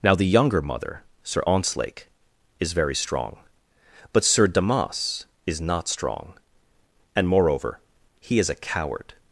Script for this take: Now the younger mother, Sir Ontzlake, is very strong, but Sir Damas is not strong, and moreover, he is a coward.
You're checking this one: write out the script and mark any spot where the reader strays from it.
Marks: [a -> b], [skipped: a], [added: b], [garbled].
Now the younger mother, Sir Ontzlake, is very strong, but Sir Damas is not strong, and moreover, he is a coward.